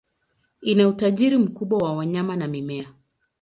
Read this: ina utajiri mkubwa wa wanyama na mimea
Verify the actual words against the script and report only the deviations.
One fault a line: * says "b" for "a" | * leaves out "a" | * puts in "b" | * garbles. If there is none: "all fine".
all fine